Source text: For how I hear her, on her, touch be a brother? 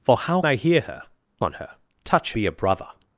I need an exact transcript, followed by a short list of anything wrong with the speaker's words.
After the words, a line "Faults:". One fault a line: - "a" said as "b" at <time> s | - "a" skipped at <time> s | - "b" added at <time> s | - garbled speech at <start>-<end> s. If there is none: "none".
For how I hear her, on her, touch be a brother?
Faults:
none